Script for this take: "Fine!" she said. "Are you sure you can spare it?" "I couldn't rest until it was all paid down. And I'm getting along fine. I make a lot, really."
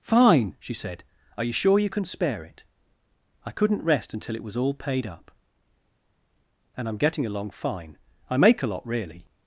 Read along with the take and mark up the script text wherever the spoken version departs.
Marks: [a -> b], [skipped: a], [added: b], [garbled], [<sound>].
"Fine!" she said. "Are you sure you can spare it?" "I couldn't rest until it was all paid [down. -> up] And I'm getting along fine. I make a lot, really."